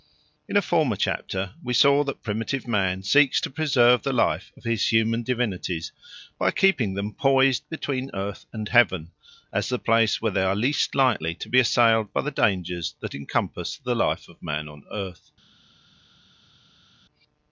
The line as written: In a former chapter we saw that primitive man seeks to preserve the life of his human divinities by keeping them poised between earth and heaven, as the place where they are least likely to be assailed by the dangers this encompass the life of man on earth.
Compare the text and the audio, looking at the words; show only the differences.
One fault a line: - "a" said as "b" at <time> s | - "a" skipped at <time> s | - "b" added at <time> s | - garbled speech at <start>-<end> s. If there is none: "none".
- "this" said as "that" at 13.0 s